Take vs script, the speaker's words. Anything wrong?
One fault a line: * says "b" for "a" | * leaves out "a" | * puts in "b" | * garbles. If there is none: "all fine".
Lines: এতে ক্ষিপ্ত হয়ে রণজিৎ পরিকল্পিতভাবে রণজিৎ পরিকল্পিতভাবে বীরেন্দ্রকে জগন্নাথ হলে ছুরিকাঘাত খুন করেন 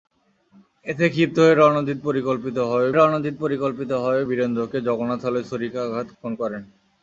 all fine